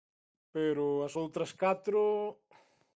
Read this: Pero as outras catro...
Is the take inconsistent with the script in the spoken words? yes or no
no